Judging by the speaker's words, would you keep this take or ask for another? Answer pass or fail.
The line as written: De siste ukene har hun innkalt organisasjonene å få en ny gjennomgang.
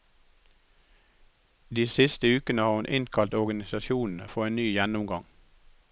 pass